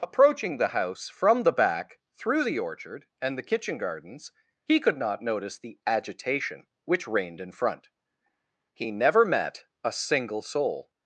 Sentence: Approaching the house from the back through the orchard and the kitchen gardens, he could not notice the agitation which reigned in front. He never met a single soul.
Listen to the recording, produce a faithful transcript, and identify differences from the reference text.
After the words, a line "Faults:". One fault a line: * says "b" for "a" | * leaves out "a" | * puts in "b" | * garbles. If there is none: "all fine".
Approaching the house from the back through the orchard and the kitchen gardens, he could not notice the agitation which reigned in front. He never met a single soul.
Faults:
all fine